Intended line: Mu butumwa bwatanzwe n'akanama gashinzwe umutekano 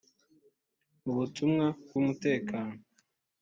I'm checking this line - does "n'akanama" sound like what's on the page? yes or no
no